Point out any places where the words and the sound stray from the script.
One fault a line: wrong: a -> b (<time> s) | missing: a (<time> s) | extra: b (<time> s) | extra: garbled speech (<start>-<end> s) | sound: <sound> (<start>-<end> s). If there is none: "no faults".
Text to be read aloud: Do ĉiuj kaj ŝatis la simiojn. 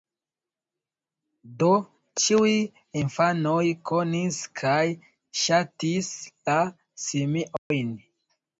extra: infanoj konis (3.0 s)
sound: dropout (7.6-7.7 s)